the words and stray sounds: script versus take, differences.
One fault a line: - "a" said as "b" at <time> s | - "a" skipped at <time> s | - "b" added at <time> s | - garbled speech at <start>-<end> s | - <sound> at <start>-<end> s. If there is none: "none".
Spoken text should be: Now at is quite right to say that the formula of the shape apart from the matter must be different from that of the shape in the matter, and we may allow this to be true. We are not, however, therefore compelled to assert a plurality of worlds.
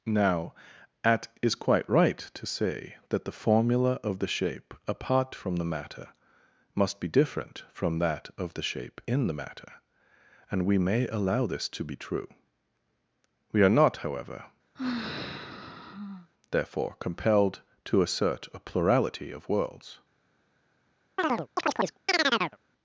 - sigh at 14.7-16.3 s
- chirp at 21.2-22.6 s